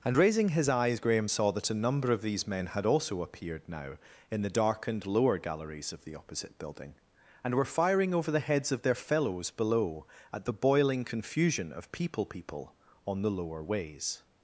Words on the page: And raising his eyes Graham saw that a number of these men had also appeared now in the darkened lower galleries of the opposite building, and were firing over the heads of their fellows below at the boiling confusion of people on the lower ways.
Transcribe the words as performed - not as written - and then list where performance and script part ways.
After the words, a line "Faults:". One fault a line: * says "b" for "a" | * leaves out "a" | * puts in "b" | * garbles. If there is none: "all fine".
And raising his eyes Graham saw that a number of these men had also appeared now in the darkened lower galleries of the opposite building, and were firing over the heads of their fellows below at the boiling confusion of people people on the lower ways.
Faults:
* puts in "people"